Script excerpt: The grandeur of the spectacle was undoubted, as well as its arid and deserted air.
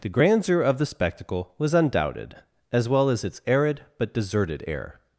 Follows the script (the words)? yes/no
no